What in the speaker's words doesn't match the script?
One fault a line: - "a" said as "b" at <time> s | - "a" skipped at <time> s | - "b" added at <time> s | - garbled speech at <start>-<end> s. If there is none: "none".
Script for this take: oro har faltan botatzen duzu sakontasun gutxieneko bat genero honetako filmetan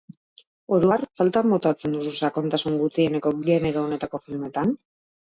- "bat" skipped at 3.4 s